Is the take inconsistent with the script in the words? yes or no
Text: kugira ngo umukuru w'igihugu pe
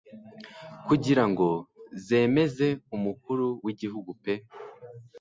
yes